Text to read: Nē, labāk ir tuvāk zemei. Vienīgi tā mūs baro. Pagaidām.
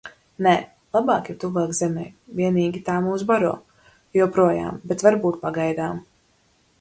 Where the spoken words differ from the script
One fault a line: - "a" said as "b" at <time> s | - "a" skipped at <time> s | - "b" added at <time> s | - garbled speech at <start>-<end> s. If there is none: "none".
- "Joprojām bet varbūt" added at 4.2 s